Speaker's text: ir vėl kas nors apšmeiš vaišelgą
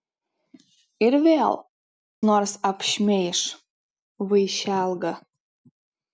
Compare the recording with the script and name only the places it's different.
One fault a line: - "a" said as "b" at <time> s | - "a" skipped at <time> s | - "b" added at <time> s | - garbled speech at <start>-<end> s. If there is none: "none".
- "kas" skipped at 1.6 s